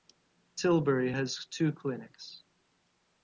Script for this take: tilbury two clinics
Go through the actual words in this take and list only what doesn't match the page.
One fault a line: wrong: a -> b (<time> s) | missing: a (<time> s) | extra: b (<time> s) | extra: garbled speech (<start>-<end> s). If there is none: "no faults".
extra: has (1.1 s)